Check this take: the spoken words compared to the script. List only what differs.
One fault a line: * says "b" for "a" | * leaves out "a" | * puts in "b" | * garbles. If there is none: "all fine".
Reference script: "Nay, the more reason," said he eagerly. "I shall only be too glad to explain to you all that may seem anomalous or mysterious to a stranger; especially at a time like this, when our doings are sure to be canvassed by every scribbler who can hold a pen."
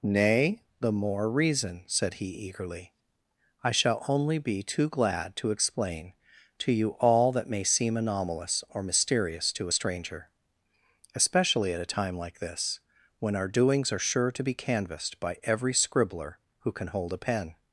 all fine